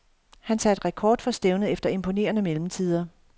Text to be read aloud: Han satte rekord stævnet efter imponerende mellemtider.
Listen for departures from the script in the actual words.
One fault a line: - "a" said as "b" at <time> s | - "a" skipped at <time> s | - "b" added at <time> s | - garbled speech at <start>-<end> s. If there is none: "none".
- "for" added at 1.2 s